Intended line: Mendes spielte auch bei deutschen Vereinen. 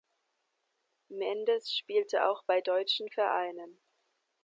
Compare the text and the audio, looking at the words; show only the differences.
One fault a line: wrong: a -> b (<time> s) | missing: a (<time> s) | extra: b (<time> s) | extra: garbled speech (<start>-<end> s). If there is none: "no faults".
no faults